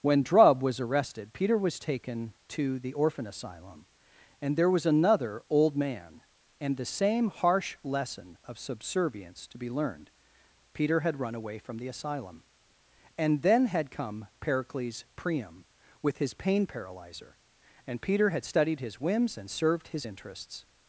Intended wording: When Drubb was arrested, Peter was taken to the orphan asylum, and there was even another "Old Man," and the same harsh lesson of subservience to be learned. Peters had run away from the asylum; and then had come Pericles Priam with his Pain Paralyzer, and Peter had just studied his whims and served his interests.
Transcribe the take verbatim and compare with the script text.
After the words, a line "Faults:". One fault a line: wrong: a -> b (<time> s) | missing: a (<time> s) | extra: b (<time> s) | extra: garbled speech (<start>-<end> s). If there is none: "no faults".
When Drubb was arrested, Peter was taken to the orphan asylum, and there was another "Old Man," and the same harsh lesson of subservience to be learned. Peter had run away from the asylum; and then had come Pericles Priam with his Pain Paralyzer, and Peter had studied his whims and served his interests.
Faults:
missing: even (4.9 s)
wrong: Peters -> Peter (10.7 s)
missing: just (18.4 s)